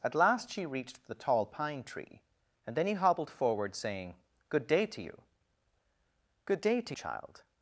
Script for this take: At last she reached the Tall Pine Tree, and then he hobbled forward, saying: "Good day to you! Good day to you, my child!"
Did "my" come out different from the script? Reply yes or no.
yes